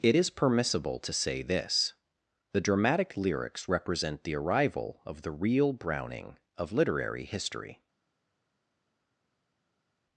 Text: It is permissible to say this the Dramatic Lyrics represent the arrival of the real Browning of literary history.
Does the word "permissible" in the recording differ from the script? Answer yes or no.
no